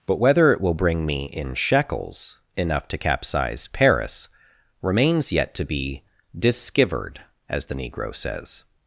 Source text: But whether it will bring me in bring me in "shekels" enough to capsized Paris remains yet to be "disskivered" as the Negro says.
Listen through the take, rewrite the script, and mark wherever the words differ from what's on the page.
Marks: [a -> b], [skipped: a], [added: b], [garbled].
But whether it will bring me in [skipped: bring me in] "shekels" enough to [capsized -> capsize] Paris remains yet to be "disskivered" as the Negro says.